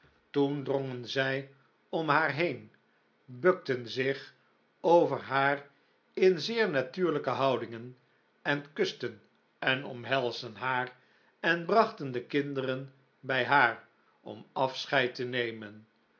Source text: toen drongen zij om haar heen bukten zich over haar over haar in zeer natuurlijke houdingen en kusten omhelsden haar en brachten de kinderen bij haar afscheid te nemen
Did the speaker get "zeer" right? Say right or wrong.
right